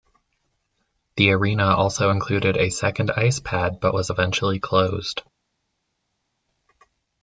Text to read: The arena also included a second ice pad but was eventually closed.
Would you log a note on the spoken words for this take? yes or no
no